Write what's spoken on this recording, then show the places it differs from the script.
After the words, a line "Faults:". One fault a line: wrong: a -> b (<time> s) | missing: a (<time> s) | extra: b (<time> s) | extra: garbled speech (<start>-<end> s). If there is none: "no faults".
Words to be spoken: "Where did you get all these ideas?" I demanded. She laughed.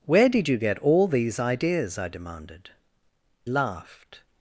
"Where did you get all these ideas?" I demanded. Laughed.
Faults:
missing: She (2.7 s)